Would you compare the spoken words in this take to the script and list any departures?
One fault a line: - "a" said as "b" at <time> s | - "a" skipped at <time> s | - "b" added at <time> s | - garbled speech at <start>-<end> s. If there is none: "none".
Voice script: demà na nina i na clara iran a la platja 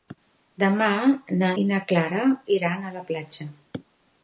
- "nina" skipped at 1.5 s